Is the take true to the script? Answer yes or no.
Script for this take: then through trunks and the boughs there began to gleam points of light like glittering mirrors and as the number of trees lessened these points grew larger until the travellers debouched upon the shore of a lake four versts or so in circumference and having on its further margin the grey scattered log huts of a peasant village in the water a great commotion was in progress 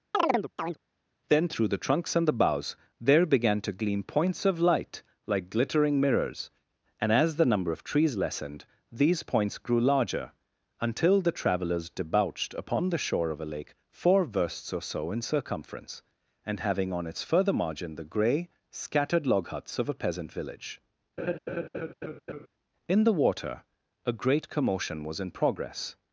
no